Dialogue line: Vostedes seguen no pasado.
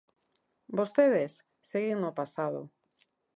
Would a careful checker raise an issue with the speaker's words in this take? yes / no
no